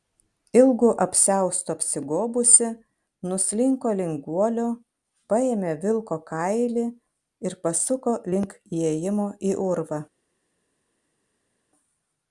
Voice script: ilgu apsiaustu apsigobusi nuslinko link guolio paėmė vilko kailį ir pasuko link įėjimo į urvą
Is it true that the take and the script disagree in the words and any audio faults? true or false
false